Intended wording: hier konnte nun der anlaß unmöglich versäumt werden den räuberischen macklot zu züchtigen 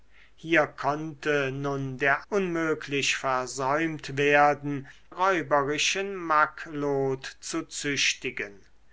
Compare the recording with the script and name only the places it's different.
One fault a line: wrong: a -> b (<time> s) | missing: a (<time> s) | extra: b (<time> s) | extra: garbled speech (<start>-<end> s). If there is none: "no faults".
missing: anlaß (2.2 s)
missing: den (4.9 s)